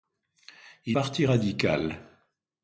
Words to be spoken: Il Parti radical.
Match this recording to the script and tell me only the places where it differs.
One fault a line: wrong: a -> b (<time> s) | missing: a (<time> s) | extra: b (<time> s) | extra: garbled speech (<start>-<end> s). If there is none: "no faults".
no faults